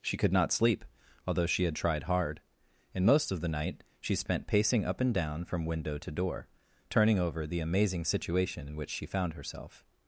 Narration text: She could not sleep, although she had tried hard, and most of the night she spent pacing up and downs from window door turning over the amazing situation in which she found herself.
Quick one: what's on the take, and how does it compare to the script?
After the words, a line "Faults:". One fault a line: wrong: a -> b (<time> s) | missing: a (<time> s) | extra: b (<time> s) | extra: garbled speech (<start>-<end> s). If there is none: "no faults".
She could not sleep, although she had tried hard, and most of the night she spent pacing up and down from window to door turning over the amazing situation in which she found herself.
Faults:
wrong: downs -> down (5.1 s)
extra: to (6.0 s)